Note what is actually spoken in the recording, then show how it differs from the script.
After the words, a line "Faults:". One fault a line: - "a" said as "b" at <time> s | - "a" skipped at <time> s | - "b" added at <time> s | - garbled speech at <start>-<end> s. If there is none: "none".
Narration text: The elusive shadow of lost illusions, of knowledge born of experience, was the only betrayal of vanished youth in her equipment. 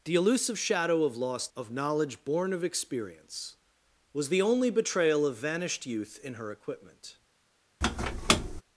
The elusive shadow of lost of knowledge born of experience, was the only betrayal of vanished youth in her equipment.
Faults:
- "illusions" skipped at 1.5 s